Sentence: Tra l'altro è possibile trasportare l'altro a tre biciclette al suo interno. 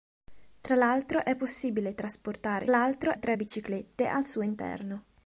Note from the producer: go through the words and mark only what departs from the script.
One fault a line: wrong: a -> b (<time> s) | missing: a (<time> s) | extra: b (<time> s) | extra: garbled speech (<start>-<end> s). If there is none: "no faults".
no faults